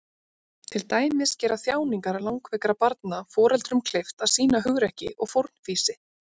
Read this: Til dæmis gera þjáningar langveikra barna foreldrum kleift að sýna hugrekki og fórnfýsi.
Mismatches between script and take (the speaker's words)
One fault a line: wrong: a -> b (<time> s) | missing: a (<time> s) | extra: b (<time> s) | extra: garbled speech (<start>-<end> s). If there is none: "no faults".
no faults